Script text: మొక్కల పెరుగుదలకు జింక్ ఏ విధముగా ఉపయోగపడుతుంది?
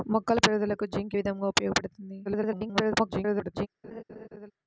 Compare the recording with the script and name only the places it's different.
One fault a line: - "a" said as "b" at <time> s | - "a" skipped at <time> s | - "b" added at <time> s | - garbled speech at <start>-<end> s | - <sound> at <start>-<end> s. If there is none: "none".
- "ఏ" skipped at 1.1 s
- garbled speech at 2.2-3.7 s
- laugh at 3.8-4.5 s